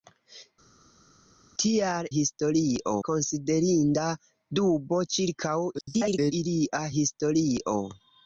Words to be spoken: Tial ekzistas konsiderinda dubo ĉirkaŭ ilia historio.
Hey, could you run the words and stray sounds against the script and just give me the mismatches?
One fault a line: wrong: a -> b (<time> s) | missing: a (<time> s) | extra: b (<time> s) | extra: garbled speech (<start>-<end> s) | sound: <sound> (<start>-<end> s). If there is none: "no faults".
wrong: ekzistas -> historio (2.1 s)
extra: garbled speech (5.7-6.3 s)